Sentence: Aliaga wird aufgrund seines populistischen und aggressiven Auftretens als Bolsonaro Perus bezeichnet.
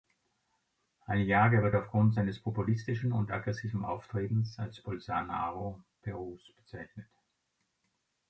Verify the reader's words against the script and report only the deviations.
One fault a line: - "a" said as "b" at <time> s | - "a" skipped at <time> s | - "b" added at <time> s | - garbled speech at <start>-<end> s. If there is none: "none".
none